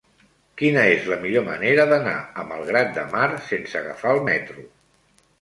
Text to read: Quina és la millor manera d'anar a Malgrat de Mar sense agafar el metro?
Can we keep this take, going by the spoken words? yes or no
yes